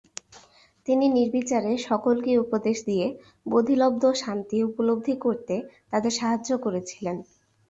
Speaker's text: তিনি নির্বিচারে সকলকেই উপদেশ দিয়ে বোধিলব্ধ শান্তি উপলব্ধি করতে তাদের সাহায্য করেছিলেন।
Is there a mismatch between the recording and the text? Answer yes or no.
no